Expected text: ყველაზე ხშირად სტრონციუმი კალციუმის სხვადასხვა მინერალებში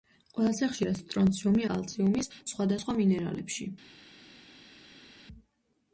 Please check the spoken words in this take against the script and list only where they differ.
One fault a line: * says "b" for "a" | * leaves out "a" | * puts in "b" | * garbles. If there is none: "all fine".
all fine